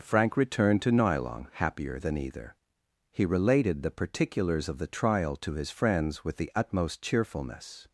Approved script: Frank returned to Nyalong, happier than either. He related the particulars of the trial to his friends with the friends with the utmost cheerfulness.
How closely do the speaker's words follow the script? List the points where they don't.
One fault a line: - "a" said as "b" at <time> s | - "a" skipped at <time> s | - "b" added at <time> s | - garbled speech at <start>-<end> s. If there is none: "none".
- "friends with the" skipped at 6.5 s